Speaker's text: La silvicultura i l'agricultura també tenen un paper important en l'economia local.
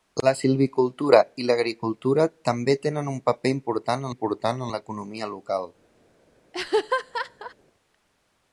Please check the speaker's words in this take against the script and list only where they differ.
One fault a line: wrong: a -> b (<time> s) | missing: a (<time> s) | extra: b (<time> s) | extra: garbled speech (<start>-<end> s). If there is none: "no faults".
extra: important (4.1 s)